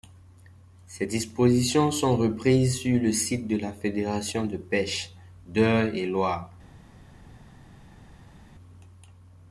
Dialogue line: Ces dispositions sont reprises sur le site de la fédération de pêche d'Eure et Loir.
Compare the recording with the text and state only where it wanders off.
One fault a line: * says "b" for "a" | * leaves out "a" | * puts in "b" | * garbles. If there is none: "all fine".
all fine